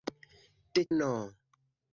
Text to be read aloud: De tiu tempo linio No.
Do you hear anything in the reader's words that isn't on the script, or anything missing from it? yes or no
yes